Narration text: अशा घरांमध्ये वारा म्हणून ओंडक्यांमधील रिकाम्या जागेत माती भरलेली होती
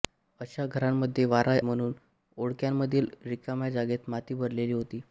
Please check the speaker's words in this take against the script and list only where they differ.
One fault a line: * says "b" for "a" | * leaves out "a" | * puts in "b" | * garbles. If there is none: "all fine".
all fine